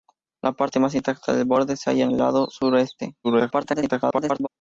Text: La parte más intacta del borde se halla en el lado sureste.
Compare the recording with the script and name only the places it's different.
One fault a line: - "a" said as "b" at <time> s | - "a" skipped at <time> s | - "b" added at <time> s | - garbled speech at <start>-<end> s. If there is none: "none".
- garbled speech at 3.2-4.5 s